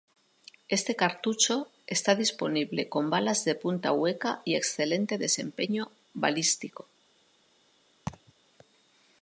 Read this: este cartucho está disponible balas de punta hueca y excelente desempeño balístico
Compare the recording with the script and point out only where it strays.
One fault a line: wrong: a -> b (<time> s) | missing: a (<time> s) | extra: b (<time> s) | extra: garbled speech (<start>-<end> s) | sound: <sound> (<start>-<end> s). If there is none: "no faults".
extra: con (2.9 s)
sound: laugh (8.1-8.3 s)